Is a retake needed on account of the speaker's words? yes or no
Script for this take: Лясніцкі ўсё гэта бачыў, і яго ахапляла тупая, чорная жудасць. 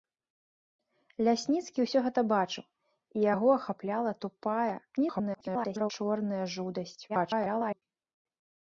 yes